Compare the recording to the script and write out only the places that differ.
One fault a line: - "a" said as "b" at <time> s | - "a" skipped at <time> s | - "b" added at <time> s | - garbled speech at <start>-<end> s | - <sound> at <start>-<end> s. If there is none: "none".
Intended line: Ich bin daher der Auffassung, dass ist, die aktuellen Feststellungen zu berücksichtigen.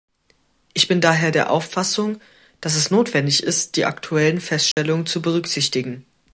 - "es notwendig" added at 2.8 s
- dropout at 4.7-4.8 s